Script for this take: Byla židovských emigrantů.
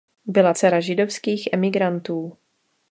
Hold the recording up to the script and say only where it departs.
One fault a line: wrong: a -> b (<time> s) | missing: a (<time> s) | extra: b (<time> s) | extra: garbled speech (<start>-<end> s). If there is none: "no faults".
extra: dcera (0.5 s)